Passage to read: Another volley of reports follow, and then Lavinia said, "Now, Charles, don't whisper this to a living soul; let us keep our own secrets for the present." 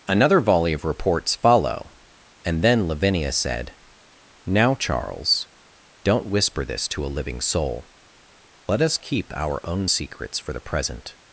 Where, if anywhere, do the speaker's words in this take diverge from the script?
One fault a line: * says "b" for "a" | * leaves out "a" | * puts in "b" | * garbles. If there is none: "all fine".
all fine